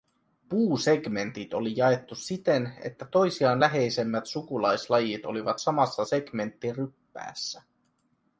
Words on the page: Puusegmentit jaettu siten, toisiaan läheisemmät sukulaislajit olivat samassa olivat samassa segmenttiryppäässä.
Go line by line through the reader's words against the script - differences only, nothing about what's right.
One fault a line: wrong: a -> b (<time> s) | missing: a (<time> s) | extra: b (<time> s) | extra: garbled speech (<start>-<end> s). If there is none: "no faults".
extra: oli (1.5 s)
extra: että (2.8 s)
missing: olivat samassa (6.0 s)